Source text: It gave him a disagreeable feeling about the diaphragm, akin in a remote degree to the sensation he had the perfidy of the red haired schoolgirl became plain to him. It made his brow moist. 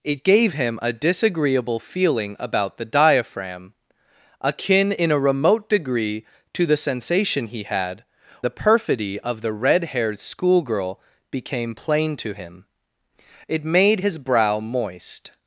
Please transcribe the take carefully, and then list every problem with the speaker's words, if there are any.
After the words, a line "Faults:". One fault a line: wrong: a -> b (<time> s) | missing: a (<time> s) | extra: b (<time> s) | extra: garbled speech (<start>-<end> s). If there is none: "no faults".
It gave him a disagreeable feeling about the diaphragm, akin in a remote degree to the sensation he had the perfidy of the red haired schoolgirl became plain to him. It made his brow moist.
Faults:
no faults